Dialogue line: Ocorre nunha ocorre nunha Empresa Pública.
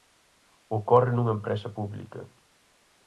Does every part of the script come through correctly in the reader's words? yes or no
no